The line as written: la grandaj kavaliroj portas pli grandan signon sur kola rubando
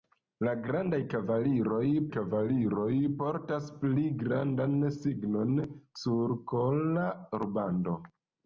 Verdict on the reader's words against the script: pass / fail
fail